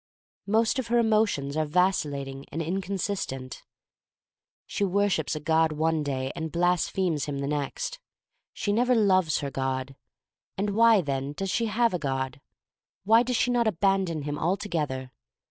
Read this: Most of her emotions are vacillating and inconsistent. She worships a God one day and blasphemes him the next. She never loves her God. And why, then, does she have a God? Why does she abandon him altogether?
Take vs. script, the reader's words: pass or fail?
fail